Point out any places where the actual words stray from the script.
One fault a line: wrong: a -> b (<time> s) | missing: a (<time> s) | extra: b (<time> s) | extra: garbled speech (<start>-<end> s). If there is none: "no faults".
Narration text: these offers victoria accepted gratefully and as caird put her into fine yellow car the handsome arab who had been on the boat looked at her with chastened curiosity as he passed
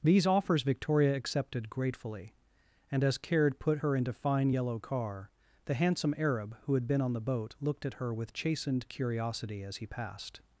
no faults